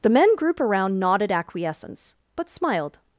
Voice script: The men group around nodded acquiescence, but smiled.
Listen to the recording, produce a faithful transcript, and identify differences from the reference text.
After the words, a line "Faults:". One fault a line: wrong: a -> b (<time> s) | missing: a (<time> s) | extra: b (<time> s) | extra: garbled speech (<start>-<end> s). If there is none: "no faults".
The men group around nodded acquiescence, but smiled.
Faults:
no faults